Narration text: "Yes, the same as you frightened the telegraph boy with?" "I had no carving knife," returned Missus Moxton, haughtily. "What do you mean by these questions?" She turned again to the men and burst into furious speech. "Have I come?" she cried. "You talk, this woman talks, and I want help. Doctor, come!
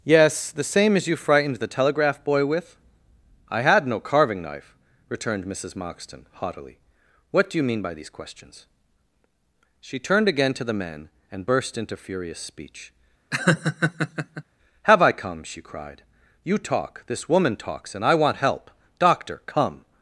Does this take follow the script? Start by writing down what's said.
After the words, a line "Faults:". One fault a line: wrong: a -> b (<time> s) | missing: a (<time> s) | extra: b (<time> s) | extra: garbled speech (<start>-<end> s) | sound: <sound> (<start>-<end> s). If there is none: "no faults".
"Yes, the same as you frightened the telegraph boy with?" "I had no carving knife," returned Missus Moxton, haughtily. "What do you mean by these questions?" She turned again to the men and burst into furious speech. "Have I come?" she cried. "You talk, this woman talks, and I want help. Doctor, come!
Faults:
sound: laugh (13.3-14.4 s)